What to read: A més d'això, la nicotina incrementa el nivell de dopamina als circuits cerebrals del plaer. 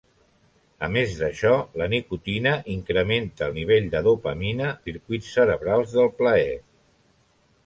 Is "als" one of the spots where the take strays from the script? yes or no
yes